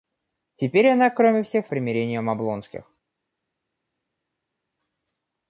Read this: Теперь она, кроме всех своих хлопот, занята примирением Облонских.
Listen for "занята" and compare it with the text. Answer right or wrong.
wrong